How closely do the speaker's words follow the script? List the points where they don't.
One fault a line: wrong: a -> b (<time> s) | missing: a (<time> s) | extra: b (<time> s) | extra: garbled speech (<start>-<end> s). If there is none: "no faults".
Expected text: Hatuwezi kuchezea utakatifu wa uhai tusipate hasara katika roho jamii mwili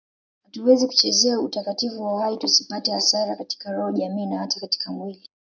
extra: na hata katika (4.3 s)